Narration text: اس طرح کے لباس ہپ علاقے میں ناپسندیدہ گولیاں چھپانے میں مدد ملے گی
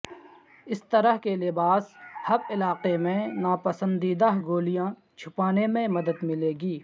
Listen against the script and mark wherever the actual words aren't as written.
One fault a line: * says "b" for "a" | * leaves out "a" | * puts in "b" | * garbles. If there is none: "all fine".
all fine